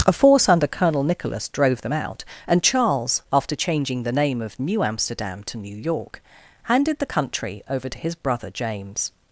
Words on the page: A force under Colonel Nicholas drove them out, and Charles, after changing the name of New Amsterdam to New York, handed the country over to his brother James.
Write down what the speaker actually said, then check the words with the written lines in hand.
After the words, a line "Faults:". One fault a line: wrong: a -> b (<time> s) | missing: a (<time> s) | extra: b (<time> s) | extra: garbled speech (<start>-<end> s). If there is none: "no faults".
A force under Colonel Nicholas drove them out, and Charles, after changing the name of New Amsterdam to New York, handed the country over to his brother James.
Faults:
no faults